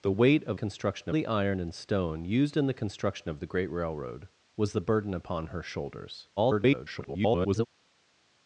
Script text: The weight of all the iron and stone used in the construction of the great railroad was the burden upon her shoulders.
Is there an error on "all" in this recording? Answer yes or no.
yes